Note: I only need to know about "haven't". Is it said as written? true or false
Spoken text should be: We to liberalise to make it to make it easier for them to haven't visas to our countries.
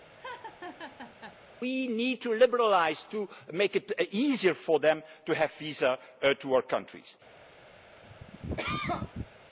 false